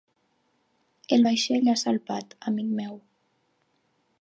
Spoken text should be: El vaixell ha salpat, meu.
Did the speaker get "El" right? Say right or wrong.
right